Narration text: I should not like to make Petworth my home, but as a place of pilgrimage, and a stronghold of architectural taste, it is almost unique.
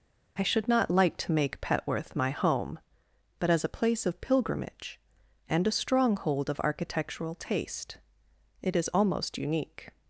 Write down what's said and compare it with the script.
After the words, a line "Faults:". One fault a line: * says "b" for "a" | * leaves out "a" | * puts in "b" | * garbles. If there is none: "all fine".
I should not like to make Petworth my home, but as a place of pilgrimage, and a stronghold of architectural taste, it is almost unique.
Faults:
all fine